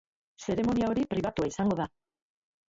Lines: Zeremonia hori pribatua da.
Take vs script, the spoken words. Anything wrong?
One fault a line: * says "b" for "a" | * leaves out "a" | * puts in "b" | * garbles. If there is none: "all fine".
* puts in "izango"